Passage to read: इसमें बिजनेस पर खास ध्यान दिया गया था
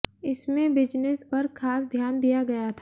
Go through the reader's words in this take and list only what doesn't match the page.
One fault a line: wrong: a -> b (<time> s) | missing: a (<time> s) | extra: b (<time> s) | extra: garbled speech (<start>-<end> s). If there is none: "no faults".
no faults